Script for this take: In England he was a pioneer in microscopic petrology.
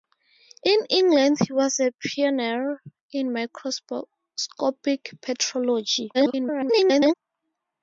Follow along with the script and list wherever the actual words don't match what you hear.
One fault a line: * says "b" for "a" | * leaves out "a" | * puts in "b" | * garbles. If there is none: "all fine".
* garbles